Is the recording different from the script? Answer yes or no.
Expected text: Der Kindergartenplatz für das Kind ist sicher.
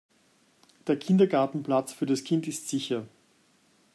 no